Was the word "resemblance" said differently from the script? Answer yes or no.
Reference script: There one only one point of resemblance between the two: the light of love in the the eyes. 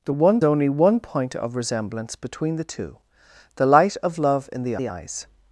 no